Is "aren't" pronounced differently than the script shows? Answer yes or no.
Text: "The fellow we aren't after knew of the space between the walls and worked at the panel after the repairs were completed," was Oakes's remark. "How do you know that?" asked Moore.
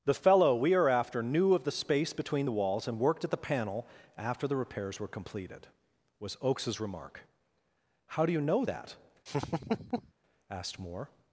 yes